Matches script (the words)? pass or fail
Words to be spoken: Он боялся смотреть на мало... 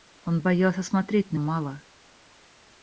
pass